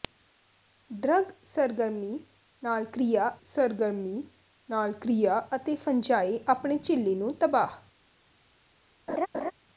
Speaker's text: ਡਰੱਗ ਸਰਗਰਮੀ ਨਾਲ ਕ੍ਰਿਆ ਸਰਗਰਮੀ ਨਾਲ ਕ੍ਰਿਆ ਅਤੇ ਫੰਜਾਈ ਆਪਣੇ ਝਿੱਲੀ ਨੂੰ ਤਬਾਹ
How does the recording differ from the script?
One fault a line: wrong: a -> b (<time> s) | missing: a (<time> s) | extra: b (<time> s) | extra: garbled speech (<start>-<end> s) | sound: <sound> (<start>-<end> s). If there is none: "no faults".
sound: laugh (9.1-9.5 s)